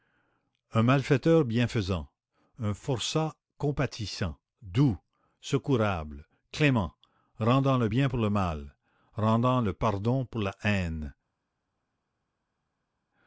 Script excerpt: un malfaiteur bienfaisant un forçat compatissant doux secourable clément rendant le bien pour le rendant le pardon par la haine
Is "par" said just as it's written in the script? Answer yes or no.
no